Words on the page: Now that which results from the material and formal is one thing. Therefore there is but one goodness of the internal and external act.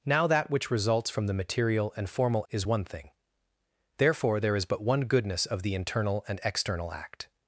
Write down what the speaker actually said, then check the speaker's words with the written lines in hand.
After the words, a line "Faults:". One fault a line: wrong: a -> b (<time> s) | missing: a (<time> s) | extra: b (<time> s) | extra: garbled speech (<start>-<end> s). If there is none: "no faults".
Now that which results from the material and formal is one thing. Therefore there is but one goodness of the internal and external act.
Faults:
no faults